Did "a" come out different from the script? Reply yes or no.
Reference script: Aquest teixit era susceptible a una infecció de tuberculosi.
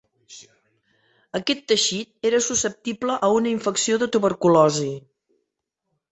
no